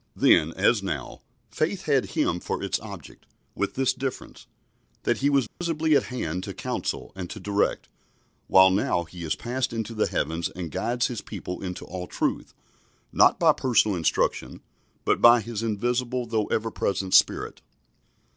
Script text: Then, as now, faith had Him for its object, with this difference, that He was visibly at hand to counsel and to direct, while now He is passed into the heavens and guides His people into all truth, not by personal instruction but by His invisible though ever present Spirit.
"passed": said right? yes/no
yes